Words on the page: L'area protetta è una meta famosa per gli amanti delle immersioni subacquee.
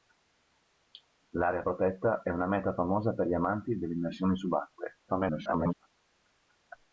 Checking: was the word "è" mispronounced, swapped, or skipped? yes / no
no